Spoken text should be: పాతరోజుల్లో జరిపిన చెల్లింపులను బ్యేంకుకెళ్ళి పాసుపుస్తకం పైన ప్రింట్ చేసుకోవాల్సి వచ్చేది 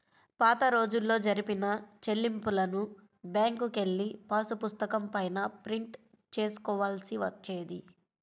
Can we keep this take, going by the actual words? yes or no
yes